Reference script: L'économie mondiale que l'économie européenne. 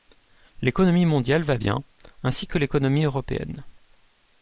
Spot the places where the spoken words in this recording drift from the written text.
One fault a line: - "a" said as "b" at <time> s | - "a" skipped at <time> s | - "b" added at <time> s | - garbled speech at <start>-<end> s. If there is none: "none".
- "va bien ainsi" added at 1.4 s